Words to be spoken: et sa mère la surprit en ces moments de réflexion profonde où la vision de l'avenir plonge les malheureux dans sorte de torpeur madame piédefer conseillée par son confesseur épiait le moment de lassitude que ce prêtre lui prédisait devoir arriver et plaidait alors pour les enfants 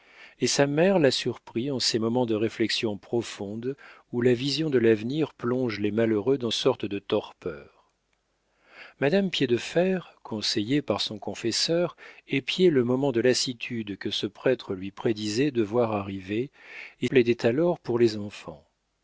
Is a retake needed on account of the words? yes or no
no